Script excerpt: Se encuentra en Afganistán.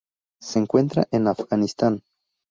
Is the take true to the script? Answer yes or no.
yes